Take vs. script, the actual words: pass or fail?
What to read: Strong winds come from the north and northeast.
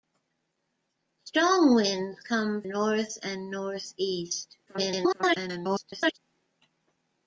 fail